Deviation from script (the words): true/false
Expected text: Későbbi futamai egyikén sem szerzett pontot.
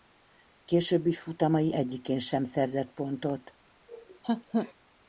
false